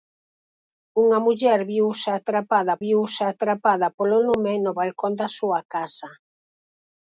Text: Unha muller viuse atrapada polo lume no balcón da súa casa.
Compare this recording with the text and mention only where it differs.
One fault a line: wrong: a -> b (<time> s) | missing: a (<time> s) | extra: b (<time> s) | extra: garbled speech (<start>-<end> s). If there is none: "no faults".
extra: viuse atrapada (2.8 s)